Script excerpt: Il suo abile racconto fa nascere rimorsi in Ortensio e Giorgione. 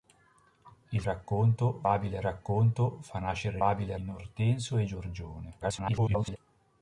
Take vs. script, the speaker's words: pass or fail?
fail